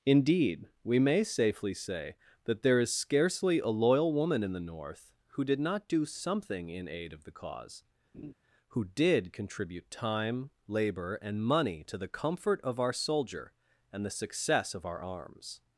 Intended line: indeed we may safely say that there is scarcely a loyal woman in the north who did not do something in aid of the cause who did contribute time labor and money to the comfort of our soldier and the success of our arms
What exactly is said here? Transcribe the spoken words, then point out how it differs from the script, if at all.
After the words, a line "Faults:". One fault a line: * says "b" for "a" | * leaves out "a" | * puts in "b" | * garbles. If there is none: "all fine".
indeed we may safely say that there is scarcely a loyal woman in the north who did not do something in aid of the cause who did contribute time labor and money to the comfort of our soldier and the success of our arms
Faults:
all fine